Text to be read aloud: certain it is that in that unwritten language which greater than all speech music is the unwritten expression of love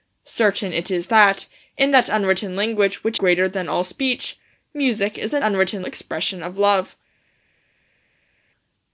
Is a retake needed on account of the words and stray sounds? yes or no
no